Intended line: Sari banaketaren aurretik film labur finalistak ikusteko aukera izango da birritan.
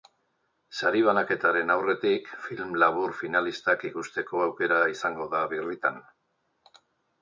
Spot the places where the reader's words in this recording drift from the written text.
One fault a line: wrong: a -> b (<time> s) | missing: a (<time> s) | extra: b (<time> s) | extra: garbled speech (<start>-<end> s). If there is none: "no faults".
no faults